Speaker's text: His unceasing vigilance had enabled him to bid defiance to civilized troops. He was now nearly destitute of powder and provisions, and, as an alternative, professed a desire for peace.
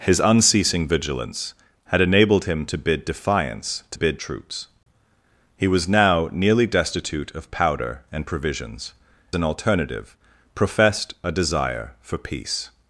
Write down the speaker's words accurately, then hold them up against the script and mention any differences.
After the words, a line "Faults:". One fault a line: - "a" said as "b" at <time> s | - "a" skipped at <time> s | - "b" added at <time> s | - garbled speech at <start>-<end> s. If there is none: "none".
His unceasing vigilance had enabled him to bid defiance to bid troops. He was now nearly destitute of powder and provisions, an alternative, professed a desire for peace.
Faults:
- "civilized" said as "bid" at 3.9 s
- "and as" skipped at 8.9 s